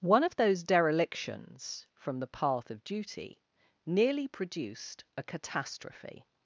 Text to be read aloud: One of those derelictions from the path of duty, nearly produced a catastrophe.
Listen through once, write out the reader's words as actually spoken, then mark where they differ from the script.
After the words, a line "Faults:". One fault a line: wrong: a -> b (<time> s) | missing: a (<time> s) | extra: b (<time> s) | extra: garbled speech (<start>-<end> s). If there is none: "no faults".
One of those derelictions from the path of duty, nearly produced a catastrophe.
Faults:
no faults